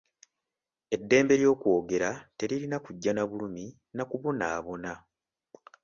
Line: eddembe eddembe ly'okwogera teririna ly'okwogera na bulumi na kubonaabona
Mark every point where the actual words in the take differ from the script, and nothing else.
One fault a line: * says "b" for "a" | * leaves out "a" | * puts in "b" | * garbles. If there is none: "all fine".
* leaves out "eddembe"
* says "kujja" for "ly'okwogera"